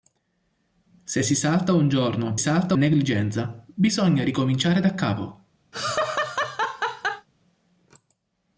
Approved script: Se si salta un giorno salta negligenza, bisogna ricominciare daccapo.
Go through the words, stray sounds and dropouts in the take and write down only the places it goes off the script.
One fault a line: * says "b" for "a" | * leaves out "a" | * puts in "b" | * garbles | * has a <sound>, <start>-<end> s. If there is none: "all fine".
* has a laugh, 5.7-7.3 s